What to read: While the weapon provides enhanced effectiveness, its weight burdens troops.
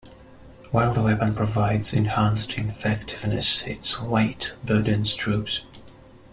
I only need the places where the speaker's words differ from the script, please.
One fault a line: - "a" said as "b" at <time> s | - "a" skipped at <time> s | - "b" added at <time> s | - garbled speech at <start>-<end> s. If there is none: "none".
none